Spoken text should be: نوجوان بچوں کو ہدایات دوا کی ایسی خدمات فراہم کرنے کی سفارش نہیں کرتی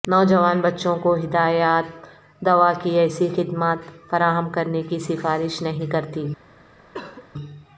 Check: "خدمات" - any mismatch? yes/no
no